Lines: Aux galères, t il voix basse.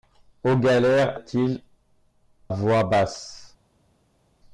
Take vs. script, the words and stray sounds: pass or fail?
pass